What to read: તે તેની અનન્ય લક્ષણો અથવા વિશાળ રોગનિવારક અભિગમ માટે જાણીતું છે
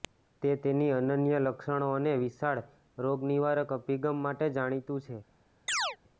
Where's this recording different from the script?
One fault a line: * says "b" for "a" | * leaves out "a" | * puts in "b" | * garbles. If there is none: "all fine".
* says "અને" for "અથવા"